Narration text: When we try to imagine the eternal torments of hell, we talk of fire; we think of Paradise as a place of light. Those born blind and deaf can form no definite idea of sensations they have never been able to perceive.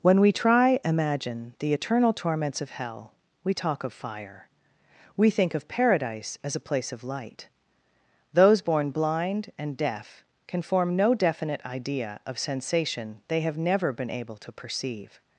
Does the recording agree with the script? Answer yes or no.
no